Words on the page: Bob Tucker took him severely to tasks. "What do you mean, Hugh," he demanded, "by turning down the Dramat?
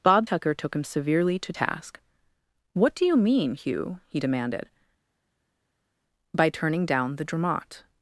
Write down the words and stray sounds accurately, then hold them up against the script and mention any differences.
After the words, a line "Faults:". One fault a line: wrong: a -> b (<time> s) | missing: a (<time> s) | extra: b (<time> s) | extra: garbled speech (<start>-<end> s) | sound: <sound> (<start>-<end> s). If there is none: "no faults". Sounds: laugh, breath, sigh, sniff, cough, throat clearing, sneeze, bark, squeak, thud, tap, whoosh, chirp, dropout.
Bob Tucker took him severely to task. "What do you mean, Hugh," he demanded, "by turning down the Dramat?
Faults:
wrong: tasks -> task (1.5 s)